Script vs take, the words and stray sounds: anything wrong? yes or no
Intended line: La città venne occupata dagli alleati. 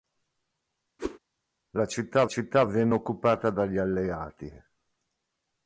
yes